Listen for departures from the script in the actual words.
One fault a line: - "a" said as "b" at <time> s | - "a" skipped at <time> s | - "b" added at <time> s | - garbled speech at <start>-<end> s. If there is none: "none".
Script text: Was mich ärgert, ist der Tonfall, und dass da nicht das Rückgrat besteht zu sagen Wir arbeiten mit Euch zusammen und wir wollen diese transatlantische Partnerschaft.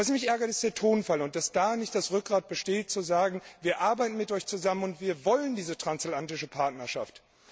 none